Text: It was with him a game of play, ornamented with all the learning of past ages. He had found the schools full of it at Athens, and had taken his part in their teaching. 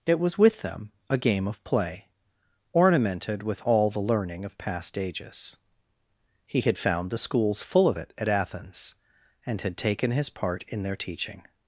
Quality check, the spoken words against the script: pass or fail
fail